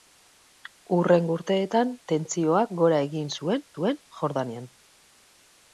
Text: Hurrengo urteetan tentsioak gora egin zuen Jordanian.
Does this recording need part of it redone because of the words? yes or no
yes